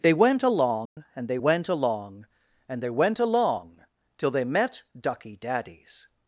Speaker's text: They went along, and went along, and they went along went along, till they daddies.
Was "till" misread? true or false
true